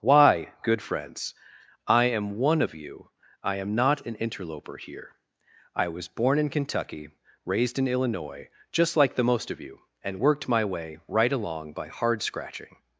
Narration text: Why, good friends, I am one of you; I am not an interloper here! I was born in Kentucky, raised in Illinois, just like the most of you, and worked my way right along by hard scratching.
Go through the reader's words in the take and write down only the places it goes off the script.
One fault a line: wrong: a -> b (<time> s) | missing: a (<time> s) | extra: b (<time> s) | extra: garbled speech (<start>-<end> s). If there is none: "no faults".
no faults